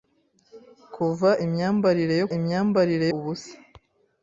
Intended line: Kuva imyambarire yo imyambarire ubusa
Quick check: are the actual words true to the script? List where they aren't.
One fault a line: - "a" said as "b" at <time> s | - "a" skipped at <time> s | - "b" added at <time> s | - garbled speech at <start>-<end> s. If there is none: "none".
none